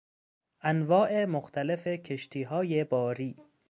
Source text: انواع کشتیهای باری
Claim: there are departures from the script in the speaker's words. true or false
true